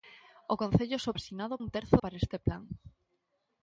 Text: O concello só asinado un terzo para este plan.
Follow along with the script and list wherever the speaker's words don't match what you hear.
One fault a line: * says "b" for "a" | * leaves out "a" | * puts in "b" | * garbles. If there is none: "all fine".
all fine